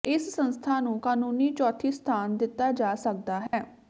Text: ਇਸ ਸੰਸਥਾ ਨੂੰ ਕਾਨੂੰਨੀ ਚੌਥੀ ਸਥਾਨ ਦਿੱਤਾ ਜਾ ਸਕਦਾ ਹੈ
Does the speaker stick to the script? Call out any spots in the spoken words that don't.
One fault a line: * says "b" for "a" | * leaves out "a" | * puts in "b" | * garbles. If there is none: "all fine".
all fine